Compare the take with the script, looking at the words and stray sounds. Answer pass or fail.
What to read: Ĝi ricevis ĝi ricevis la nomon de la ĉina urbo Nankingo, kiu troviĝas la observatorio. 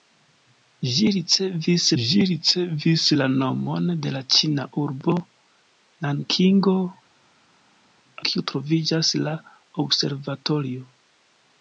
pass